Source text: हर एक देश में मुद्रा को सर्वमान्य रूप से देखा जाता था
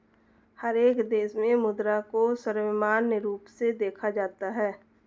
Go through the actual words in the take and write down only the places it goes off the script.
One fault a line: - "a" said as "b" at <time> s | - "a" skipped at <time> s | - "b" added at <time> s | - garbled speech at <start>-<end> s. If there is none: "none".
- "था" said as "है" at 4.5 s